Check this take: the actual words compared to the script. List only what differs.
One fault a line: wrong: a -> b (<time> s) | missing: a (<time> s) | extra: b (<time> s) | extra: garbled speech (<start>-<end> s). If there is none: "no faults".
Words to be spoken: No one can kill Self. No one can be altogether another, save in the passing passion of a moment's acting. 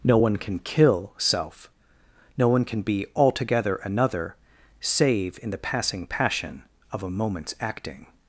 no faults